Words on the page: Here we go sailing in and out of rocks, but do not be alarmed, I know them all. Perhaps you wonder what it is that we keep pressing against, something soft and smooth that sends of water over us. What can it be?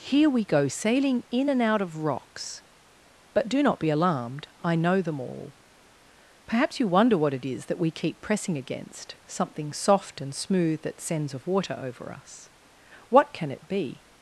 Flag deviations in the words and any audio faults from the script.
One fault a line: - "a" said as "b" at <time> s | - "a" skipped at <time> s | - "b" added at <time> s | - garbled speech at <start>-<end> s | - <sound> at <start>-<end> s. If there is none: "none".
none